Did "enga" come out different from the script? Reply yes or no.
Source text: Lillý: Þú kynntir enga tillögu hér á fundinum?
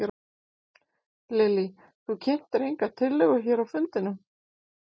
no